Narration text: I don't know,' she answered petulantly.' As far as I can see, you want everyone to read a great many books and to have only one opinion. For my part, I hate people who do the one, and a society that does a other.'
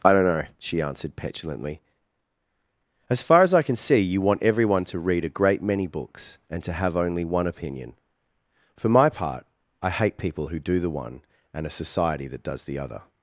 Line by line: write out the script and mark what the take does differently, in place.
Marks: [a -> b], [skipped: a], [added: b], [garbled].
I don't know,' she answered petulantly.' As far as I can see, you want everyone to read a great many books and to have only one opinion. For my part, I hate people who do the one, and a society that does [a -> the] other.'